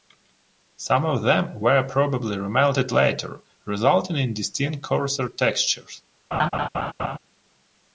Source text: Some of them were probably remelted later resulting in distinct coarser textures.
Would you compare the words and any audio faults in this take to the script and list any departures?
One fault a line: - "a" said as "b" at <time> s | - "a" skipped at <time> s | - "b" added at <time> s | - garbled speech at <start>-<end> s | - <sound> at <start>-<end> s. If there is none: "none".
- laugh at 6.3-7.2 s